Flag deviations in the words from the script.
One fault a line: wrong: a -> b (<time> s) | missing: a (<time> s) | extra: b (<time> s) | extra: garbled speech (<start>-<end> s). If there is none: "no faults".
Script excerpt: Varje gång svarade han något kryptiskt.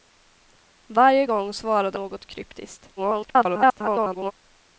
missing: han (2.0 s)
extra: garbled speech (3.0-4.3 s)